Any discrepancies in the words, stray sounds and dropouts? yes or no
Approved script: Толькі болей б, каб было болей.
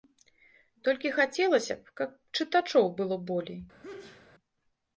yes